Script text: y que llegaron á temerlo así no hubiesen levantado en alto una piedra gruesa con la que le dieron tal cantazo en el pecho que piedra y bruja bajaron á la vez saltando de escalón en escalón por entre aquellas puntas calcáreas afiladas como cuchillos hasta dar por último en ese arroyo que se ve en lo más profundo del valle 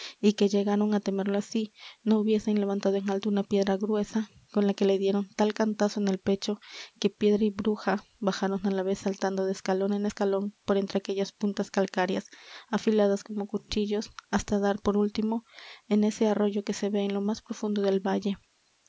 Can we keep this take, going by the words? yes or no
yes